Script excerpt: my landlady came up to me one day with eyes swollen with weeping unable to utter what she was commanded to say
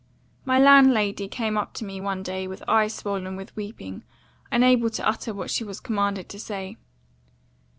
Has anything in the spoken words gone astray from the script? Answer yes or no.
no